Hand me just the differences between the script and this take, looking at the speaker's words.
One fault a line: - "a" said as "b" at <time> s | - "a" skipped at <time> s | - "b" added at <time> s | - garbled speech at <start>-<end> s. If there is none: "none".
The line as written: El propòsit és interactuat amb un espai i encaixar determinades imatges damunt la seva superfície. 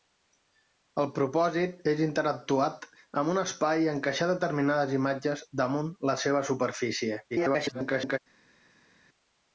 - garbled speech at 7.3-8.2 s